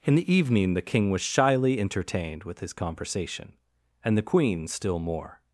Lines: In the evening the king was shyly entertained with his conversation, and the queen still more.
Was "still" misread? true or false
false